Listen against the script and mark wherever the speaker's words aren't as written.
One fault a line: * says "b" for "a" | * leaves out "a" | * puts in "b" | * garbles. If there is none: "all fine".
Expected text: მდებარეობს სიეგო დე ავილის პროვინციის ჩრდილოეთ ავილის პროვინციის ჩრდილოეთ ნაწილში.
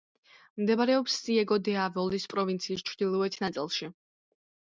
* leaves out "ავილის პროვინციის ჩრდილოეთ"